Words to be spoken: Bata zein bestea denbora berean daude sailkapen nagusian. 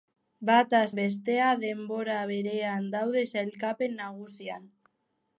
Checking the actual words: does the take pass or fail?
fail